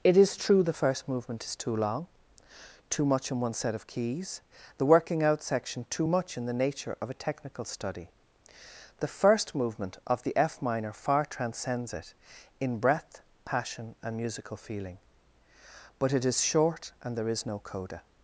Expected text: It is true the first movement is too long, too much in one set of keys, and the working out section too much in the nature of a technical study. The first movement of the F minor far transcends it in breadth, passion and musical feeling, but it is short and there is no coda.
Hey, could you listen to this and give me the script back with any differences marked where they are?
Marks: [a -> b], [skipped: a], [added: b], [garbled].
It is true the first movement is too long, too much in one set of keys, [skipped: and] the working out section too much in the nature of a technical study. The first movement of the F minor far transcends it in breadth, passion and musical feeling, but it is short and there is no coda.